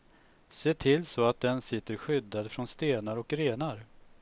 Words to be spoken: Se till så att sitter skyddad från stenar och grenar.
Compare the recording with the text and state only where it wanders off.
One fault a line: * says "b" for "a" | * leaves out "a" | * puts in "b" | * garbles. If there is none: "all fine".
* puts in "den"